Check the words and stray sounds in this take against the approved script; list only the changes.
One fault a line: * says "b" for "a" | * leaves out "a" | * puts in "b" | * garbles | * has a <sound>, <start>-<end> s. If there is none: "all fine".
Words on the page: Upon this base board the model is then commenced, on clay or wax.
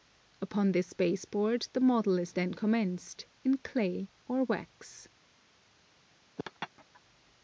* says "in" for "on"
* has a laugh, 6.4-7.0 s